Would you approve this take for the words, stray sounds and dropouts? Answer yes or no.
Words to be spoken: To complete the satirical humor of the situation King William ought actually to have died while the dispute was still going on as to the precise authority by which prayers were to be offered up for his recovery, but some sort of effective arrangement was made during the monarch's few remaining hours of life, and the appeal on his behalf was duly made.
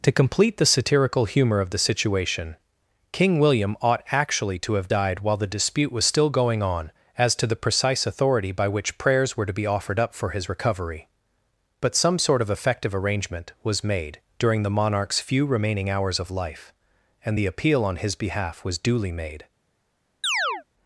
no